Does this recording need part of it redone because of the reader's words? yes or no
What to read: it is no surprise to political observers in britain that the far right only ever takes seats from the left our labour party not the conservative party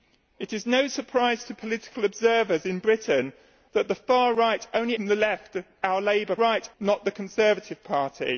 yes